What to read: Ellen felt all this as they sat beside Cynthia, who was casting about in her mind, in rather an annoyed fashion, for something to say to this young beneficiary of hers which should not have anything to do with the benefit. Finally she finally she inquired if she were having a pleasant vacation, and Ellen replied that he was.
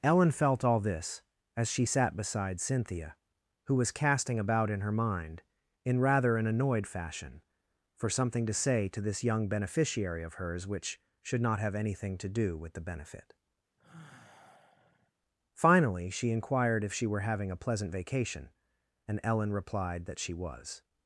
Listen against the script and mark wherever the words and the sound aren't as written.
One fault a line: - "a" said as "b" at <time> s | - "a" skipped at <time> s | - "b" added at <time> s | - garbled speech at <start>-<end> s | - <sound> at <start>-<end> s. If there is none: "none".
- "they" said as "she" at 1.7 s
- sigh at 13.8-15.1 s
- "finally she" skipped at 16.3 s
- "he" said as "she" at 20.2 s